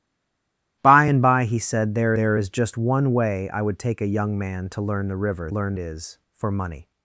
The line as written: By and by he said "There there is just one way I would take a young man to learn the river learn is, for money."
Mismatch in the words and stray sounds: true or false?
false